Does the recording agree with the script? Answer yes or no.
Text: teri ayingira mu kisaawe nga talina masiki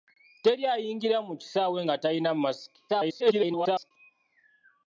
no